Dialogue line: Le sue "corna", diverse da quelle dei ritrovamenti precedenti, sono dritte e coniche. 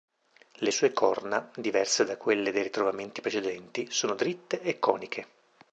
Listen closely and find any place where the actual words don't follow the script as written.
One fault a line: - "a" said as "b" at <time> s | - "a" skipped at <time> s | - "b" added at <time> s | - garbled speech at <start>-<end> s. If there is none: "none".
none